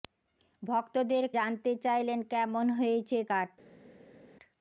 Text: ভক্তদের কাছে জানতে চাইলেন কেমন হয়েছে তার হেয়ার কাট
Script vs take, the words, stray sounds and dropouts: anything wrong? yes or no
yes